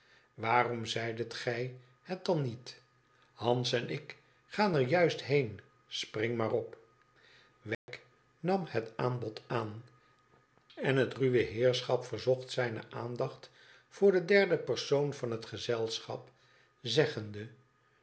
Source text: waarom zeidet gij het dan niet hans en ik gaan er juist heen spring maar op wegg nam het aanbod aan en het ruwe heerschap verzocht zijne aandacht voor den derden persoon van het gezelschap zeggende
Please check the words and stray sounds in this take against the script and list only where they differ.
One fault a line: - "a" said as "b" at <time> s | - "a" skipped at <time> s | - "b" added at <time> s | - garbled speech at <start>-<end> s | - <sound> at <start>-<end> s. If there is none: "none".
- dropout at 7.7-7.9 s